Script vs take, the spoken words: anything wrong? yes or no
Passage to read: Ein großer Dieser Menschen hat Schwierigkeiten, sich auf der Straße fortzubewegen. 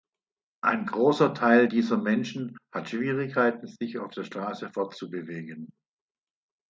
yes